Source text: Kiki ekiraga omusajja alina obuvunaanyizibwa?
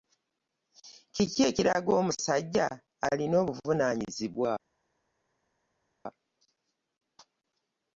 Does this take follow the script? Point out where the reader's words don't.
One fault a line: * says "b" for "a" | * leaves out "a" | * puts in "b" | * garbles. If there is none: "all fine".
all fine